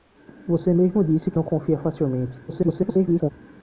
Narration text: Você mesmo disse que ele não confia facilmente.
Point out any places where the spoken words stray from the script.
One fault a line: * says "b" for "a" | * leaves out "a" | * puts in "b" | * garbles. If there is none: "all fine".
* leaves out "ele"
* garbles